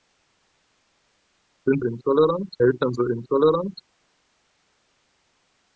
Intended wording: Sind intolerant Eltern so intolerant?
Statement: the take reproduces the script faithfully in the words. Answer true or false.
true